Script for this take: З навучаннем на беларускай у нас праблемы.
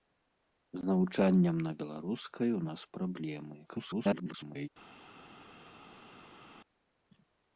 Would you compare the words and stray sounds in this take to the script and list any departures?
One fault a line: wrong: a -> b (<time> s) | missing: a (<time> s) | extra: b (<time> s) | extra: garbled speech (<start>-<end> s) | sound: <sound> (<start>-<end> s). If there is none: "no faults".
extra: garbled speech (3.7-4.7 s)